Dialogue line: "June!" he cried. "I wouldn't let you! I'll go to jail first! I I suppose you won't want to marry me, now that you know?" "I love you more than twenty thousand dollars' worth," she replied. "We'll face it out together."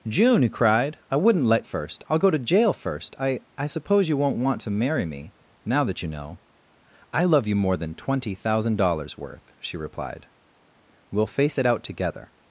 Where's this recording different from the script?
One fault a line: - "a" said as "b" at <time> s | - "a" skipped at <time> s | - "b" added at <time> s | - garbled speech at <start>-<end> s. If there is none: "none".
- "you" said as "first" at 1.6 s